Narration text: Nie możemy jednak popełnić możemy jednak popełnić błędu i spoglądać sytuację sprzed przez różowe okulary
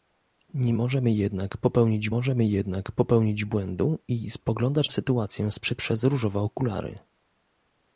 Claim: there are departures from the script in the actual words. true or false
false